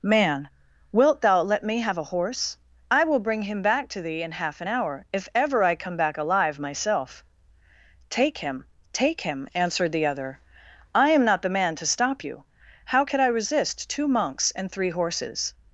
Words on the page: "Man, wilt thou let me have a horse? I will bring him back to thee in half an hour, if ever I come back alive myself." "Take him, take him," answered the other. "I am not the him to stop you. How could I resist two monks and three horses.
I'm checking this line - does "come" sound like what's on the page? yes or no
yes